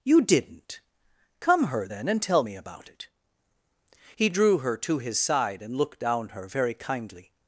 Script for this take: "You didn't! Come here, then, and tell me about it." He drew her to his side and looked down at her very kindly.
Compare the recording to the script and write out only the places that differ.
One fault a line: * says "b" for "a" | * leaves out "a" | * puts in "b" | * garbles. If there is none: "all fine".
* says "her" for "here"
* leaves out "at"